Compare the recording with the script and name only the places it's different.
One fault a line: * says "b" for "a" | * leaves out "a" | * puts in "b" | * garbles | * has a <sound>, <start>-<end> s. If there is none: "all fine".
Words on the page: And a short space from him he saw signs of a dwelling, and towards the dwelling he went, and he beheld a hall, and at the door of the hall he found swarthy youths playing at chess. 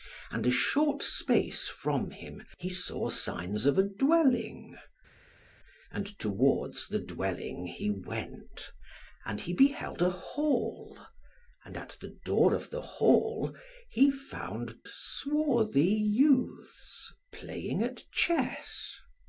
all fine